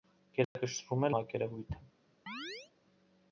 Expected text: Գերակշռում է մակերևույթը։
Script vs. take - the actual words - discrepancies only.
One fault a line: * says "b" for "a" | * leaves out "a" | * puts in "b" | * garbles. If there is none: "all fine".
all fine